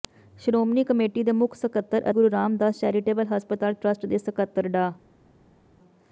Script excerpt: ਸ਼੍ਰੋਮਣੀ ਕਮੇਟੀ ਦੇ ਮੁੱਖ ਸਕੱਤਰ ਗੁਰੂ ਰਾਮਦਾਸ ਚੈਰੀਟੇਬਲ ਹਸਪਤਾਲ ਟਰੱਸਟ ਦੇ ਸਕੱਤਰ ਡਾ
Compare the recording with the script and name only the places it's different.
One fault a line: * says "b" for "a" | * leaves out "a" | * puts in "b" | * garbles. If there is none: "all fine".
all fine